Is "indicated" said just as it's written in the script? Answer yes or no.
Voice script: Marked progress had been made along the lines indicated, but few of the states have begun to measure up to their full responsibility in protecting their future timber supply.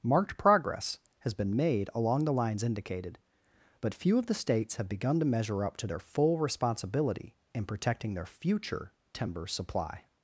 yes